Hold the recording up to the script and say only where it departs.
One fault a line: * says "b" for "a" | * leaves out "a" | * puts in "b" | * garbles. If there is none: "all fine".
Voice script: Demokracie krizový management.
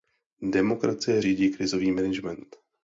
* puts in "řídí"